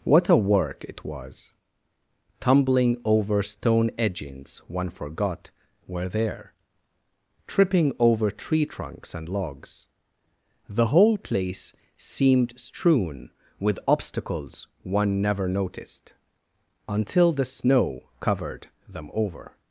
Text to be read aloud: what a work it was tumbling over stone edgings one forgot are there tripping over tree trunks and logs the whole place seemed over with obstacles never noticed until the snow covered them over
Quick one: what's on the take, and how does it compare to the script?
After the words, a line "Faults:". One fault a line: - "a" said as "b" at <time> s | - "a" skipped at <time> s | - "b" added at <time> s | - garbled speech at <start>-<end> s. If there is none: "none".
what a work it was tumbling over stone edgings one forgot were there tripping over tree trunks and logs the whole place seemed strewn with obstacles one never noticed until the snow covered them over
Faults:
- "are" said as "were" at 5.8 s
- "over" said as "strewn" at 12.6 s
- "one" added at 14.8 s